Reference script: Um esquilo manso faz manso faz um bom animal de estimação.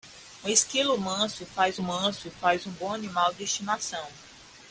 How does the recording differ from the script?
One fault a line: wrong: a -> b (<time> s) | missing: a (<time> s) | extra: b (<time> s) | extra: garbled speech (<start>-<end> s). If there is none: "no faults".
no faults